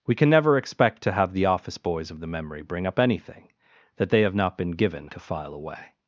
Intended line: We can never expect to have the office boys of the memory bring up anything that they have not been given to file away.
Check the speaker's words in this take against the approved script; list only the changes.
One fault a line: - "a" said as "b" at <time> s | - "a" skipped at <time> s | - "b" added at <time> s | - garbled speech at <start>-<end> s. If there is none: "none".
none